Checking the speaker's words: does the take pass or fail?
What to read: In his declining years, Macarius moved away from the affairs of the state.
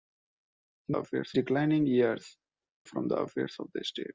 fail